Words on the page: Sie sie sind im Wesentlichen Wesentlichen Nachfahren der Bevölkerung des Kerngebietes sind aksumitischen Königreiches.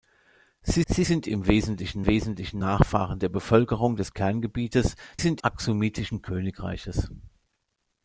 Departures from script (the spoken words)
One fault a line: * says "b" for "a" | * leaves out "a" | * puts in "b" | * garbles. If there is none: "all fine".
all fine